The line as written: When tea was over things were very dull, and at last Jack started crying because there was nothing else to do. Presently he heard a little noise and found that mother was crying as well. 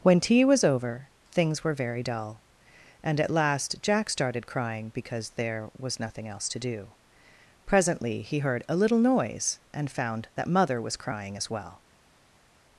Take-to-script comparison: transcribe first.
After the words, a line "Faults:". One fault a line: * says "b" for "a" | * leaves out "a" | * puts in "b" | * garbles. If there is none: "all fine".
When tea was over things were very dull, and at last Jack started crying because there was nothing else to do. Presently he heard a little noise and found that mother was crying as well.
Faults:
all fine